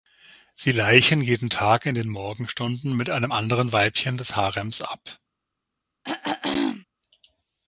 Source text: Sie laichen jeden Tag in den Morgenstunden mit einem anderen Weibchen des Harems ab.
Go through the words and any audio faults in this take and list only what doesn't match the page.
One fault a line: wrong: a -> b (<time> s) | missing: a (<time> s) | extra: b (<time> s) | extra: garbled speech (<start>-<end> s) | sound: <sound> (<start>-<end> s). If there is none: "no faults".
sound: throat clearing (6.0-6.9 s)